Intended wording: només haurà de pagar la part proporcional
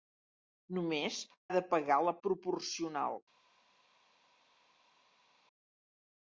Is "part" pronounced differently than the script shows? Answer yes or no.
yes